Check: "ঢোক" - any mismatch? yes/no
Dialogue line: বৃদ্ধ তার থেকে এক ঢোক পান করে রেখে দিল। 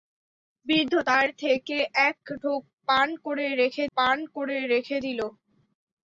no